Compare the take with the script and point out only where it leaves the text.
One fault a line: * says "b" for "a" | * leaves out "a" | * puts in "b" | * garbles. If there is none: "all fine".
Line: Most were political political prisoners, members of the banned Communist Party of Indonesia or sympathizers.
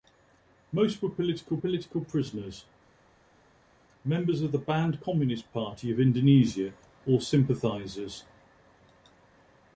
all fine